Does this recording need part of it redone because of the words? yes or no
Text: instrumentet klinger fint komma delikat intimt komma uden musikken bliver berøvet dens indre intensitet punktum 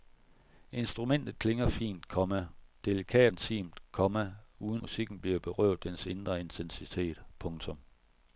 no